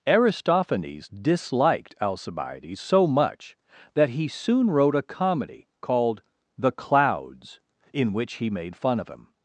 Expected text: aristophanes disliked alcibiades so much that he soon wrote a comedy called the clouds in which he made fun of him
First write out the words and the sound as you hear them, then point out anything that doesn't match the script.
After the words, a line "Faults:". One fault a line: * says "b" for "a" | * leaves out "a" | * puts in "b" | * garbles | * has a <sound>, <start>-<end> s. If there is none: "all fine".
aristophanes disliked alcibiades so much that he soon wrote a comedy called the clouds in which he made fun of him
Faults:
all fine